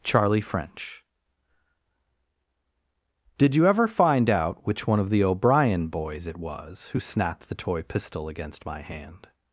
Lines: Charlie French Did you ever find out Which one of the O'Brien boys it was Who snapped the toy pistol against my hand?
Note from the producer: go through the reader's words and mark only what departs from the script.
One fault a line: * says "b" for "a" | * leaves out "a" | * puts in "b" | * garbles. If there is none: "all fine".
all fine